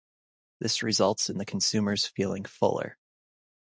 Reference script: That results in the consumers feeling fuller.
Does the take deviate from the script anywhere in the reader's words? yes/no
yes